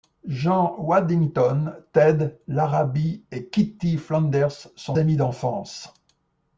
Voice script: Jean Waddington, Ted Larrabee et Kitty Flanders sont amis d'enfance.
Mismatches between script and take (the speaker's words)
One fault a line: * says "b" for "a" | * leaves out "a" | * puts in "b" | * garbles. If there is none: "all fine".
all fine